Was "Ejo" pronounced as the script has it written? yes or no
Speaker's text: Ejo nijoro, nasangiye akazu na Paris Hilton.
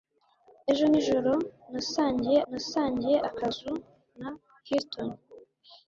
yes